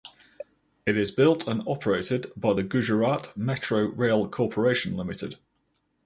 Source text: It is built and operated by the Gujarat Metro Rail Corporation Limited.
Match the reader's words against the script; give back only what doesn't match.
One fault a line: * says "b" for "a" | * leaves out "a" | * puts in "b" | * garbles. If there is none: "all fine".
all fine